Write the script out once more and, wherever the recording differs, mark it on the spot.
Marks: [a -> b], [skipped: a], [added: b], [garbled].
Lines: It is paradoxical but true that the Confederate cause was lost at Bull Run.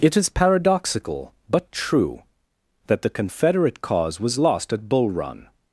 It is paradoxical but true that the Confederate cause was lost at Bull Run.